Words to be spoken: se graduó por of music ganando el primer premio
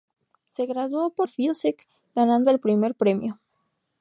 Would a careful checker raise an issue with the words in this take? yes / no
no